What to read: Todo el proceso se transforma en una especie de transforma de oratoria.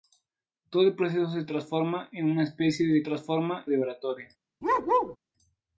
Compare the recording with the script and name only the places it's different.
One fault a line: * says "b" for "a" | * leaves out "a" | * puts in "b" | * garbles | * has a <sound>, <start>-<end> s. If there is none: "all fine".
* has a bark, 4.6-5.2 s